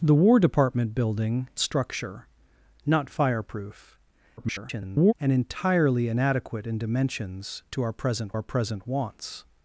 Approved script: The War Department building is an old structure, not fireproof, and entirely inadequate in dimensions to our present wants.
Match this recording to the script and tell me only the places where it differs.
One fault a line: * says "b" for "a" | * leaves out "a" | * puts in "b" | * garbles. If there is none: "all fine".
* leaves out "is an old"
* garbles
* puts in "our present"